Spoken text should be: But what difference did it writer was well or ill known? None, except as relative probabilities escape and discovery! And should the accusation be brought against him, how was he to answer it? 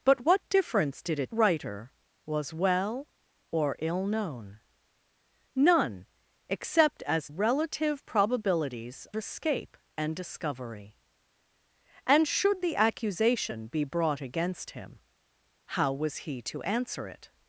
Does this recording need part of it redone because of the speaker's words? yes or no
no